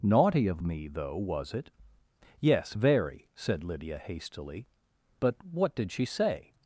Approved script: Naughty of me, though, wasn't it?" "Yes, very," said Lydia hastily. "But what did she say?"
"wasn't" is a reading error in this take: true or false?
true